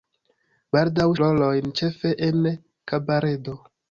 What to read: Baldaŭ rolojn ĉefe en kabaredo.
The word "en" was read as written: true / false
true